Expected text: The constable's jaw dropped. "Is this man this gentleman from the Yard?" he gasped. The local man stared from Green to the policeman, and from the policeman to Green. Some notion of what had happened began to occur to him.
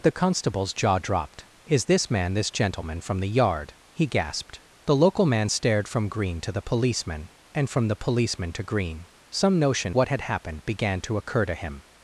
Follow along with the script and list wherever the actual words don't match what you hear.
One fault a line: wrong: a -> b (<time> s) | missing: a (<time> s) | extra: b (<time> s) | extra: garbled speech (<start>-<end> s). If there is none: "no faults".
missing: of (10.0 s)